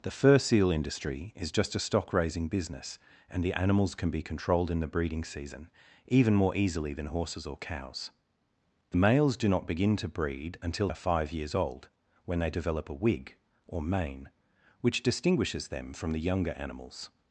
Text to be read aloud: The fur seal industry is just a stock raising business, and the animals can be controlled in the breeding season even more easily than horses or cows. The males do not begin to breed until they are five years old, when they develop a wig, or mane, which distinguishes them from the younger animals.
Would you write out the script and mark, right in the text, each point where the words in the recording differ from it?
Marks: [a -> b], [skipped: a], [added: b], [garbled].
The fur seal industry is just a stock raising business, and the animals can be controlled in the breeding season even more easily than horses or cows. The males do not begin to breed until [skipped: they] are five years old, when they develop a wig, or mane, which distinguishes them from the younger animals.